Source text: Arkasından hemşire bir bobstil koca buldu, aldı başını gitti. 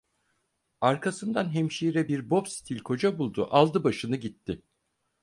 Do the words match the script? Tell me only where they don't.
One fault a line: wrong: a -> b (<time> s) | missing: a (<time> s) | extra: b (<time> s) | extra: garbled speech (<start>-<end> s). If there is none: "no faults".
no faults